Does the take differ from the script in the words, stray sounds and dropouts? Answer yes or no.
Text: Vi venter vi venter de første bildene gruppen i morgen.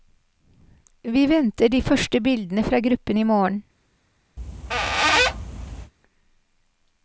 yes